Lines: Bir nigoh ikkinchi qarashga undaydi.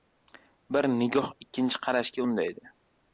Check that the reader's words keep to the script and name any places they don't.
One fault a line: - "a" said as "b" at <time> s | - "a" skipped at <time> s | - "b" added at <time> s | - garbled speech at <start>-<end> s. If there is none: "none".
none